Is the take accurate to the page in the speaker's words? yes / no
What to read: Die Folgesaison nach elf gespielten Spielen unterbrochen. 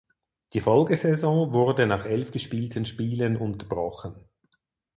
no